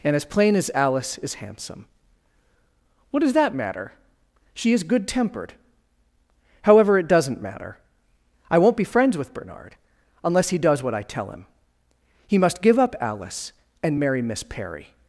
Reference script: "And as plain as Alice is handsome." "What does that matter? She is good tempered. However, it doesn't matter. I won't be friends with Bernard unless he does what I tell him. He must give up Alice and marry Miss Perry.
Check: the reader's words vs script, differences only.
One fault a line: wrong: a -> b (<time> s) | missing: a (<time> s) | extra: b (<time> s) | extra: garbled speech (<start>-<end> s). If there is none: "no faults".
no faults